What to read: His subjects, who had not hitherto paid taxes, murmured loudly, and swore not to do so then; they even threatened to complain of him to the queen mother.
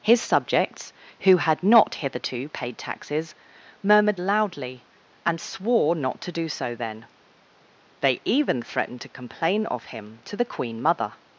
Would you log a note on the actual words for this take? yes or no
no